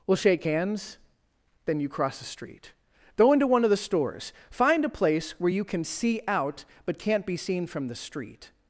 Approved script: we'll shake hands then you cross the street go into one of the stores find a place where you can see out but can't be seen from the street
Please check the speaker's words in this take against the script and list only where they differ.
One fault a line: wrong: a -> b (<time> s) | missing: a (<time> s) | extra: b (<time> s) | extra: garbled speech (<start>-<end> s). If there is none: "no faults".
no faults